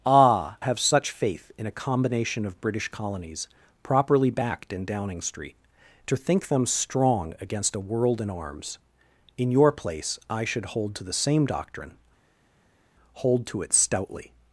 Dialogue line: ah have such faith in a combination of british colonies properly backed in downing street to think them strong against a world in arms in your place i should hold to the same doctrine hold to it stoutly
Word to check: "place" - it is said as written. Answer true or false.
true